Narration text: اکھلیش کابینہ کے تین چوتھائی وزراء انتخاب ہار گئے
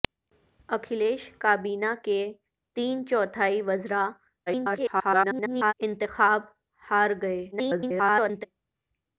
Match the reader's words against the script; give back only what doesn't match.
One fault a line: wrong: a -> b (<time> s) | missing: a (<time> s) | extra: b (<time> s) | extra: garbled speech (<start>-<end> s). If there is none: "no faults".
extra: garbled speech (4.5-5.7 s)
extra: garbled speech (7.5-8.5 s)